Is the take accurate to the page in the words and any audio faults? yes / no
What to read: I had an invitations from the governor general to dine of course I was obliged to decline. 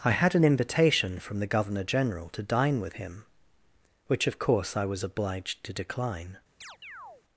no